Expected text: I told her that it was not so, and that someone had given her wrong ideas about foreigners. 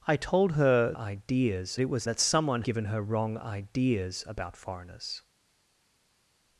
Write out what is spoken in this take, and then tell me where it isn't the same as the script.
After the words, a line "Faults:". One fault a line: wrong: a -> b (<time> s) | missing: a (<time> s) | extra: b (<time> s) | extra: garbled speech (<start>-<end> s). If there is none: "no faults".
I told her ideas it was that someone given her wrong ideas about foreigners.
Faults:
wrong: that -> ideas (0.9 s)
missing: not so and (2.1 s)
missing: had (2.6 s)